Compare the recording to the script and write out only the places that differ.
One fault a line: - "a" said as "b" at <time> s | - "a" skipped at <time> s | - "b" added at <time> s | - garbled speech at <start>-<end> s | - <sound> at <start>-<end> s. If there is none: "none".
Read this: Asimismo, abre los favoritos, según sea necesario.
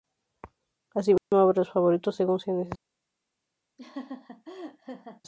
- dropout at 1.2-1.3 s
- laugh at 3.8-5.2 s